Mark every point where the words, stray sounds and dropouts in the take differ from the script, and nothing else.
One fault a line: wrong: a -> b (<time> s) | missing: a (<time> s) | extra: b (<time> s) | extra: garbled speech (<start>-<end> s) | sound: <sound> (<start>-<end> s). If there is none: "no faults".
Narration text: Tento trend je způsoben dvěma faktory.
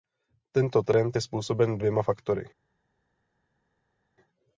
no faults